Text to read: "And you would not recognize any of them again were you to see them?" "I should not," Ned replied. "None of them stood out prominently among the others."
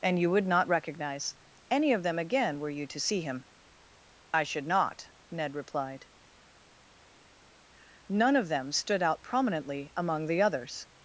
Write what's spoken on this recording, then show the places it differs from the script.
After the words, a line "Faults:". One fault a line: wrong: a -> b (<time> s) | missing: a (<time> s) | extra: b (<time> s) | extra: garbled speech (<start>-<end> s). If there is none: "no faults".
"And you would not recognize any of them again were you to see him?" "I should not," Ned replied. "None of them stood out prominently among the others."
Faults:
wrong: them -> him (3.2 s)